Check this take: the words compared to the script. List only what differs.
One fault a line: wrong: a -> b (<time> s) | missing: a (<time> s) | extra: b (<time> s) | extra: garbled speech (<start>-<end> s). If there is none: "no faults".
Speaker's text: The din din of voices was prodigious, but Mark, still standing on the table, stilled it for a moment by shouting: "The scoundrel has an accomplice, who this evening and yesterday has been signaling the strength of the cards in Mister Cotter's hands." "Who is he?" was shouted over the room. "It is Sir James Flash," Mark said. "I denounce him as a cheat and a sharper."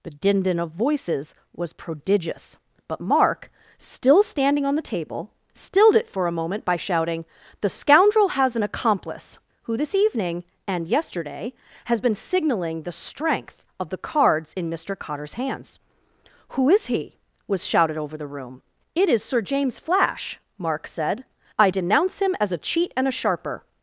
no faults